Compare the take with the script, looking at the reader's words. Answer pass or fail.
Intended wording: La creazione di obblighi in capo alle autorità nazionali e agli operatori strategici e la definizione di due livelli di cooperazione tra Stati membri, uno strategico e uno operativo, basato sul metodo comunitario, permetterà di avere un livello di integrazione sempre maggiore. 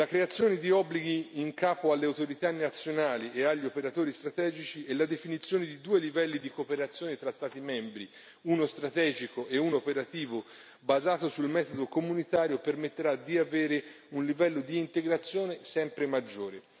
pass